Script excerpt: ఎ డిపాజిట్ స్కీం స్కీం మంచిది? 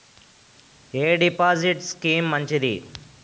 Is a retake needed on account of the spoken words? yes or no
yes